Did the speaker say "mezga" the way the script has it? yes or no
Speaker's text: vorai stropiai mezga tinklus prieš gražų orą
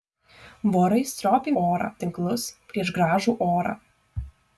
no